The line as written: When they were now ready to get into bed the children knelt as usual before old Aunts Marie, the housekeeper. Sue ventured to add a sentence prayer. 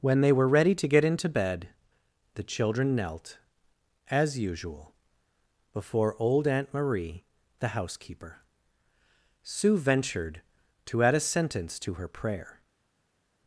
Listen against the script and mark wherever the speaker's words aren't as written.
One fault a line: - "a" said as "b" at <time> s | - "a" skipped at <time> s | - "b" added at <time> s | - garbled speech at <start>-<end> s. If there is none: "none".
- "now" skipped at 0.5 s
- "Aunts" said as "Aunt" at 6.5 s
- "to her" added at 11.8 s